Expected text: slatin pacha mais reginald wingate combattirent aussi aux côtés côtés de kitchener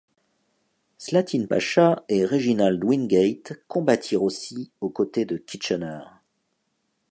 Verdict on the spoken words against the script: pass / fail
fail